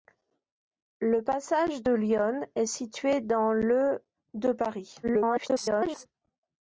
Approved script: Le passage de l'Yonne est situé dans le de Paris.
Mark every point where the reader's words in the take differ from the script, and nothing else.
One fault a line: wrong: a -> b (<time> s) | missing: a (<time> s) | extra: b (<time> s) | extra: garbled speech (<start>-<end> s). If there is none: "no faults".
extra: garbled speech (5.0-6.1 s)